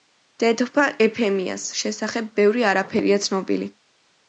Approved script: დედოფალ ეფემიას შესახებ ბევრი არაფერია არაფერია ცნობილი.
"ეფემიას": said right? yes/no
yes